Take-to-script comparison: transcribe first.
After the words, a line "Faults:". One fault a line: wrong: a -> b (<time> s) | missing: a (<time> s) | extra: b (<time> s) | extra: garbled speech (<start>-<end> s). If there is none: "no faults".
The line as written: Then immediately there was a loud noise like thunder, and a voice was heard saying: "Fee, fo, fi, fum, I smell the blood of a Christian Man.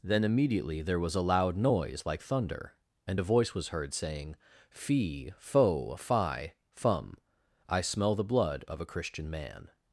Then immediately there was a loud noise like thunder, and a voice was heard saying: "Fee, fo, fi, fum, I smell the blood of a Christian Man.
Faults:
no faults